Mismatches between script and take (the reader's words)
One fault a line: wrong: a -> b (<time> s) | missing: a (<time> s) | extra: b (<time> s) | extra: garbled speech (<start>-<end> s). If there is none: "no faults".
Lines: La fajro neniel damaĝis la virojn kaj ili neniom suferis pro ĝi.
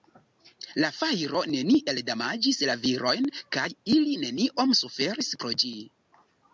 no faults